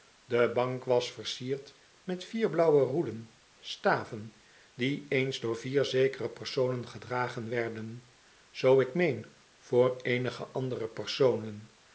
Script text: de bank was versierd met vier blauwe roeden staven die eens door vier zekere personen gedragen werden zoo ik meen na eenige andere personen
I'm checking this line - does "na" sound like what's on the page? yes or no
no